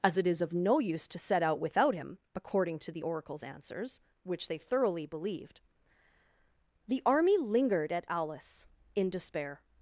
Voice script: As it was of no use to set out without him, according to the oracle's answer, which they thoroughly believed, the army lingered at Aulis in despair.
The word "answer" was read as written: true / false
false